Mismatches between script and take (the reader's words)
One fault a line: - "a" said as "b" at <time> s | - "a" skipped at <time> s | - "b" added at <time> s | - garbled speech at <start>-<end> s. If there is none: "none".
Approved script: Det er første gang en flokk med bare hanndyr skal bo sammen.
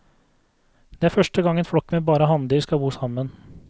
none